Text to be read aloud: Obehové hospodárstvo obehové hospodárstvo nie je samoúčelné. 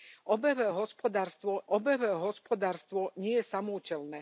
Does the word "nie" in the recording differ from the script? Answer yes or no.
no